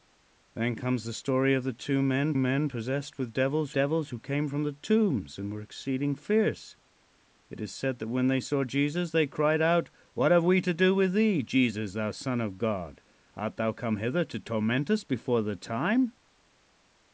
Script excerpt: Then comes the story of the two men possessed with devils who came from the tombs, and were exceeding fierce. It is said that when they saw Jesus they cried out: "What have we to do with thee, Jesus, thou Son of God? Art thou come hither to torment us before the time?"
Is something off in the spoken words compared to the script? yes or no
yes